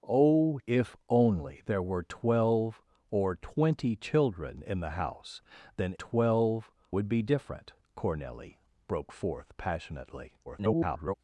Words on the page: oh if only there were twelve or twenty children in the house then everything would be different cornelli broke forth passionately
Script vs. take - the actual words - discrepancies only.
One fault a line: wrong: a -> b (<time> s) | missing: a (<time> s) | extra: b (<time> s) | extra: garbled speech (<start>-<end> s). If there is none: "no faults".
wrong: everything -> twelve (5.9 s)
extra: garbled speech (10.5-11.1 s)